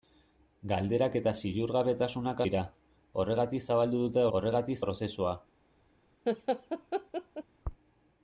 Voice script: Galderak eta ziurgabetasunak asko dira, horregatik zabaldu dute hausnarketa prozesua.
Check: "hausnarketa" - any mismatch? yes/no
yes